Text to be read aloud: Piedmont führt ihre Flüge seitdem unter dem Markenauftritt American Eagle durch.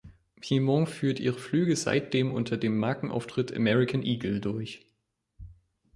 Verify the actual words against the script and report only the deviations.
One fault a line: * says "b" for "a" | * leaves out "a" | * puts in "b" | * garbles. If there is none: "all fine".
all fine